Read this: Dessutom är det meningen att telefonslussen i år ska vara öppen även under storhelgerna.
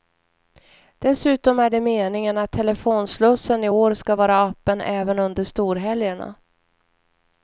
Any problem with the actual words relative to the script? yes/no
no